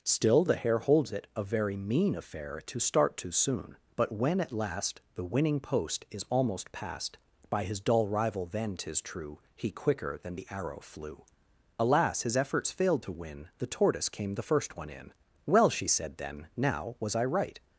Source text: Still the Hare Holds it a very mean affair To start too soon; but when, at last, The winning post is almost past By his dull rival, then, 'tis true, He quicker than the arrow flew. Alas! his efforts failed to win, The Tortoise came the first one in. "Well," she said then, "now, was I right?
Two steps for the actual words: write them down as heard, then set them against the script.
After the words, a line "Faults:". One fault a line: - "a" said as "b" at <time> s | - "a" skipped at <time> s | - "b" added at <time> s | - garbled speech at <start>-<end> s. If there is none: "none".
Still the Hare Holds it a very mean affair To start too soon; but when, at last, The winning post is almost past By his dull rival, then, 'tis true, He quicker than the arrow flew. Alas! his efforts failed to win, The Tortoise came the first one in. "Well," she said then, "now, was I right?
Faults:
none